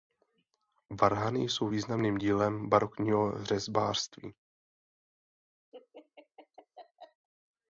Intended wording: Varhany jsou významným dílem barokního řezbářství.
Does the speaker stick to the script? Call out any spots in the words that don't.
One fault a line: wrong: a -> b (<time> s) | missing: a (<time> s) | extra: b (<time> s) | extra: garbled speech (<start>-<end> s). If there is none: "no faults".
no faults